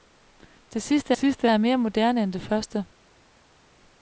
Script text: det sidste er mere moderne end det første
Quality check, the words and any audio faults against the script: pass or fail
fail